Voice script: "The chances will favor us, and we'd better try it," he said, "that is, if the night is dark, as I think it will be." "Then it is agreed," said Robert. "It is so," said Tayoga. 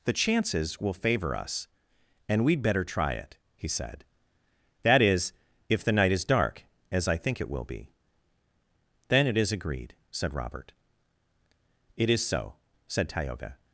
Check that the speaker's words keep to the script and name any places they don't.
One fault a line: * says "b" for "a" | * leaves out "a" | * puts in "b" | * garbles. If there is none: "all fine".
all fine